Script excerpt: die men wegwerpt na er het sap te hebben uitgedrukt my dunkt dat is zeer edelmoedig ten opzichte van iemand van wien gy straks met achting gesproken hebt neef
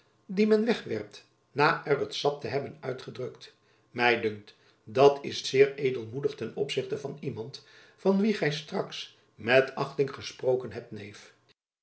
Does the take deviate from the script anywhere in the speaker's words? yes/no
no